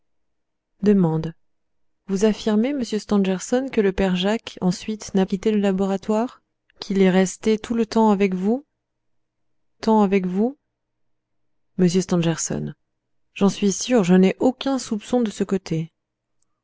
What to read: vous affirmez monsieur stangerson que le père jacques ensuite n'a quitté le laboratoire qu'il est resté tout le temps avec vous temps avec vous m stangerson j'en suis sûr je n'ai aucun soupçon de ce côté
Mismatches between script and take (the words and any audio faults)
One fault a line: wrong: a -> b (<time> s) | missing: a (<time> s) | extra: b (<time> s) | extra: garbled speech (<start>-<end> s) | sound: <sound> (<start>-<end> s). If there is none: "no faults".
no faults